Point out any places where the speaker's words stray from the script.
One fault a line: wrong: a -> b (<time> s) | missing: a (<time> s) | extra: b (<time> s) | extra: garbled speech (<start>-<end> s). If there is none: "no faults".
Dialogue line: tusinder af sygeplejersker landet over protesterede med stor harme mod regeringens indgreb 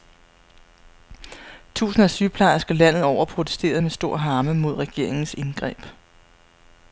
no faults